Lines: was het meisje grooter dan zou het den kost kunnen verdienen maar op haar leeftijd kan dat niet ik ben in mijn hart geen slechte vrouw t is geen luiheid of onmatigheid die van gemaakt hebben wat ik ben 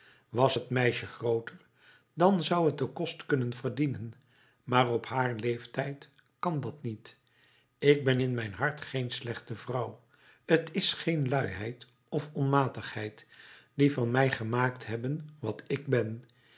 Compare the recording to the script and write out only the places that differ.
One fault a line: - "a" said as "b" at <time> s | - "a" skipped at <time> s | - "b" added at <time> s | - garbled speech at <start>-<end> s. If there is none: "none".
- "mij" added at 14.1 s